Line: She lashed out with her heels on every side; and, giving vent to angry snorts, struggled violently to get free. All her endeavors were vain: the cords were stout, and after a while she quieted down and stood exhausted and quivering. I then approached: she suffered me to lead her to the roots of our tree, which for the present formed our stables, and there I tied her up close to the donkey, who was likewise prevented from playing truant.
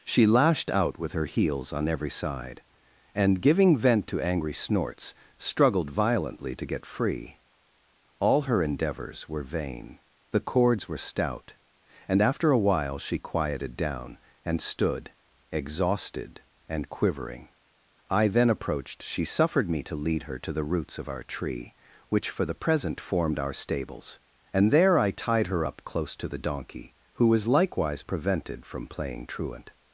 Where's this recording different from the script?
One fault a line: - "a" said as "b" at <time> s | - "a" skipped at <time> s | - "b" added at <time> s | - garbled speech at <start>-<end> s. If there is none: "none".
none